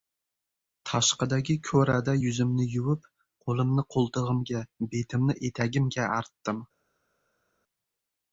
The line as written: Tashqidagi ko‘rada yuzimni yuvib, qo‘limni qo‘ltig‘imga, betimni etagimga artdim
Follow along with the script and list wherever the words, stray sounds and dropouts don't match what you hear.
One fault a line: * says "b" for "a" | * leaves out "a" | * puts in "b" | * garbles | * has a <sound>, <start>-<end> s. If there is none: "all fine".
all fine